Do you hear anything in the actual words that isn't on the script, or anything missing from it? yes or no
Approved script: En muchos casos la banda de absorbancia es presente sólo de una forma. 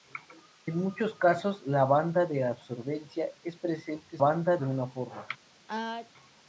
yes